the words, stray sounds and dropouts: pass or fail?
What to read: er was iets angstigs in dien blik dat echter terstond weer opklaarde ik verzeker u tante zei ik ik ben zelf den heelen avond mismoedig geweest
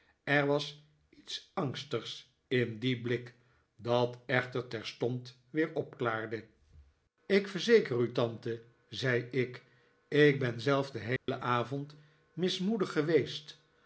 fail